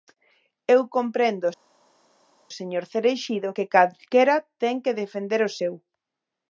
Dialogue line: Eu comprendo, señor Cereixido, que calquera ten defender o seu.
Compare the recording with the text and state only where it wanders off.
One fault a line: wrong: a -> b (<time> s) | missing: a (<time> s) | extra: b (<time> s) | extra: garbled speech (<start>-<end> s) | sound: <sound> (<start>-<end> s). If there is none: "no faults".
extra: que (4.8 s)